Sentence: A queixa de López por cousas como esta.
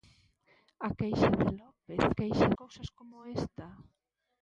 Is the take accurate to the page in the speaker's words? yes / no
no